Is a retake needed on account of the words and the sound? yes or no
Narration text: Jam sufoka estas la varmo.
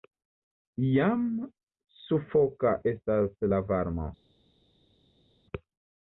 no